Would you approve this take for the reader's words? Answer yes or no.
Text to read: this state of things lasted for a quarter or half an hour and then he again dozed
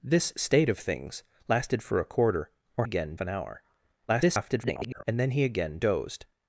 no